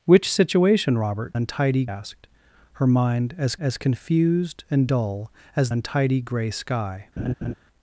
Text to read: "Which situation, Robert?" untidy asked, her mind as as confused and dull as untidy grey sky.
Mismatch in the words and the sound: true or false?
true